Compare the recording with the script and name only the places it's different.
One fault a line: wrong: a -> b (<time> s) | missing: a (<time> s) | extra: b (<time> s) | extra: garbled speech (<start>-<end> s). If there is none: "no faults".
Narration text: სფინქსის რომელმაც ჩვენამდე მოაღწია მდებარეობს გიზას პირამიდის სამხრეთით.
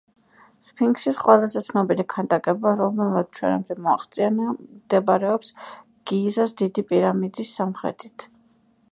extra: ყველაზე ცნობილი ქანდაკება (1.2 s)
extra: დიდი (6.6 s)